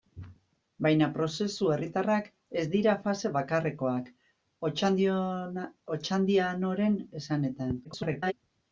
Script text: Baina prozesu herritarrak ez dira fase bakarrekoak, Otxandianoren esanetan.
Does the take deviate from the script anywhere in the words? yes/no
yes